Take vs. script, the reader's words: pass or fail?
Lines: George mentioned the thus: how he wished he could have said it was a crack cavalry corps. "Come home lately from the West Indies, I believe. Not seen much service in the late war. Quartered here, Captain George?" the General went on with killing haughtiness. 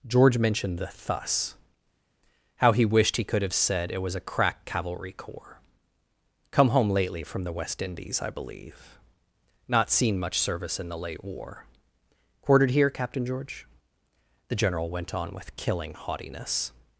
pass